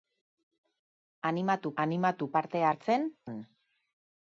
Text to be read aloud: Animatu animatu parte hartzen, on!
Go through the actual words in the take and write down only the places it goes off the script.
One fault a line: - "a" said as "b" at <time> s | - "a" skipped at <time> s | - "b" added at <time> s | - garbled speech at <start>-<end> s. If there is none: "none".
none